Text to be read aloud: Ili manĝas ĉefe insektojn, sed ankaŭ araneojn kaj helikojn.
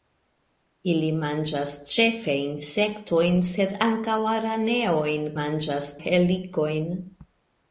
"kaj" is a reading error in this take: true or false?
true